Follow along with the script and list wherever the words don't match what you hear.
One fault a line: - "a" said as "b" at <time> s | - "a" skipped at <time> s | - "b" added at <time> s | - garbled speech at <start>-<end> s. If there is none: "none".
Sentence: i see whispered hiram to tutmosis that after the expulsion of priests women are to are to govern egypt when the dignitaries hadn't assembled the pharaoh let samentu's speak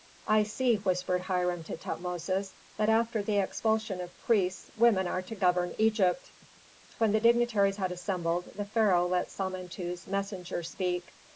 - "are to" skipped at 5.3 s
- "hadn't" said as "had" at 7.8 s
- "messenger" added at 10.1 s